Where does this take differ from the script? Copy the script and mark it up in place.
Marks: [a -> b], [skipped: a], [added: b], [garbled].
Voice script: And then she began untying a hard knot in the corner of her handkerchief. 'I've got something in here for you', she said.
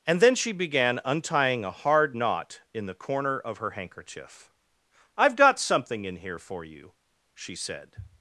And then she began untying a hard knot in the corner of her handkerchief. 'I've got something in here for you', she said.